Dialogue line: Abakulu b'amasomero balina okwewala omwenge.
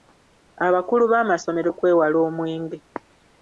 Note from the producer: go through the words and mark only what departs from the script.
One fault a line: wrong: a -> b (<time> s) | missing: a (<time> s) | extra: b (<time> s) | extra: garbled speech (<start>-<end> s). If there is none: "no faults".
missing: balina (1.7 s)